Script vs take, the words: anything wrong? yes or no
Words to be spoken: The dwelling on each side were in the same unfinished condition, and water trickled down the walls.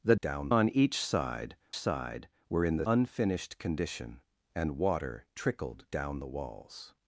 yes